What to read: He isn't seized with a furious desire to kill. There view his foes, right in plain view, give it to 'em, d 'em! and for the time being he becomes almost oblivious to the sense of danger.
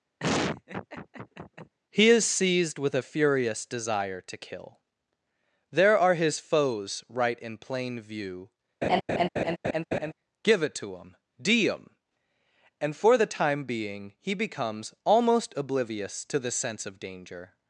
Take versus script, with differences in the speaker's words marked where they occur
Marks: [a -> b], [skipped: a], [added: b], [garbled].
He [isn't -> is] seized with a furious desire to kill. There [view -> are] his foes, right in plain view, give it to 'em, d 'em! and for the time being he becomes almost oblivious to the sense of danger.